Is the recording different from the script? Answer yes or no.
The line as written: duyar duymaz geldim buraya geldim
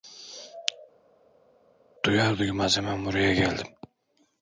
yes